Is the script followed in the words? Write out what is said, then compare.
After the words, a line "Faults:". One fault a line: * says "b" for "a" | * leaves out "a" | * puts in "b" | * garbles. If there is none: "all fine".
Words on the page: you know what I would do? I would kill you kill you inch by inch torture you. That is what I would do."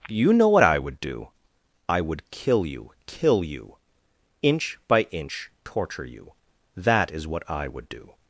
you know what I would do? I would kill you kill you inch by inch torture you. That is what I would do."
Faults:
all fine